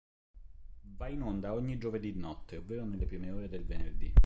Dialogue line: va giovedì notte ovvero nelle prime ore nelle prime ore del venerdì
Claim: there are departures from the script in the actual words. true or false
true